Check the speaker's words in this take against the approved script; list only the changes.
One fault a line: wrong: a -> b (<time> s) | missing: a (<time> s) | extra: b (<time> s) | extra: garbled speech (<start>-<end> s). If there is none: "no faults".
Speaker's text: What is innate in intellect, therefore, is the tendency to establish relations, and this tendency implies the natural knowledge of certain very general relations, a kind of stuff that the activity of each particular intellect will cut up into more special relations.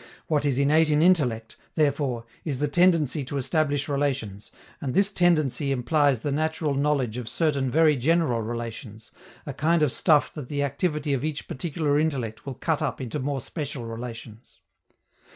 no faults